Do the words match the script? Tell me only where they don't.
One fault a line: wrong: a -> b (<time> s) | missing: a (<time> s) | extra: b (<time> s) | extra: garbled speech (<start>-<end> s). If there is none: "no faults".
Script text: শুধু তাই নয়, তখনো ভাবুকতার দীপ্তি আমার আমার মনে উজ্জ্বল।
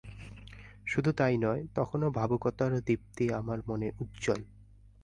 missing: আমার (3.6 s)